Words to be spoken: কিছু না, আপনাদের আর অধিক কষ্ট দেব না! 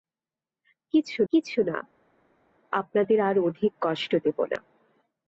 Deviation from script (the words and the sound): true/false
true